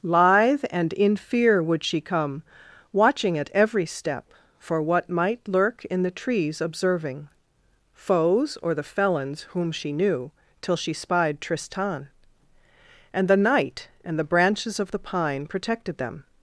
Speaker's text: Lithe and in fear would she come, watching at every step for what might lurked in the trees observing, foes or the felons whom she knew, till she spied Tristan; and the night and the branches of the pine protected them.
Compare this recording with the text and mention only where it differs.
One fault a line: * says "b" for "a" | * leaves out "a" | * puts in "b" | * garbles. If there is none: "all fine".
* says "lurk" for "lurked"